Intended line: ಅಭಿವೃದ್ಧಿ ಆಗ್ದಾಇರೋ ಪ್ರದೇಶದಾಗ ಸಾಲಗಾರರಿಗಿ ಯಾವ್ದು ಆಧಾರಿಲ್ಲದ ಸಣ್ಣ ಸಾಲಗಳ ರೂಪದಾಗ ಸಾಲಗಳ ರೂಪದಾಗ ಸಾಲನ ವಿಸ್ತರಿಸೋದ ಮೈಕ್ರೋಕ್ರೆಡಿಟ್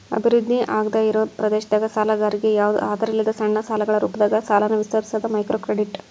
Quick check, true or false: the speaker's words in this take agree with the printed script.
false